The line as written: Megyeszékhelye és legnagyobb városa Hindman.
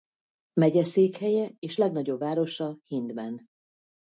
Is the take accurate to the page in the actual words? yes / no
yes